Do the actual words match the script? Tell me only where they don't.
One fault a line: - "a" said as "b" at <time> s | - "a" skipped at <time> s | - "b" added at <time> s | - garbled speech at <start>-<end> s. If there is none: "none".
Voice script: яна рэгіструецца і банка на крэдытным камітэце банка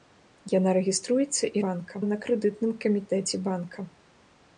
none